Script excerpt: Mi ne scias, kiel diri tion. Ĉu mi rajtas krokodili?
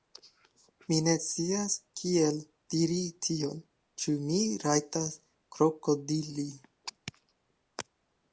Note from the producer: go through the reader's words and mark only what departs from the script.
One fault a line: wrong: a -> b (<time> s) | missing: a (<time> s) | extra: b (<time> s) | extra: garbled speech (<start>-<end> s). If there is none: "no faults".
no faults